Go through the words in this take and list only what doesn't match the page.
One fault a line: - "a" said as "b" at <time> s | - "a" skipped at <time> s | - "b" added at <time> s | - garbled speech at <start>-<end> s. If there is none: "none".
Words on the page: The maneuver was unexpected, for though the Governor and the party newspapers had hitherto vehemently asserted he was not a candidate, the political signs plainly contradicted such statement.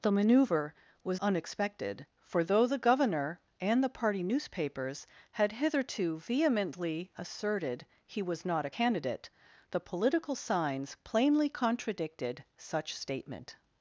none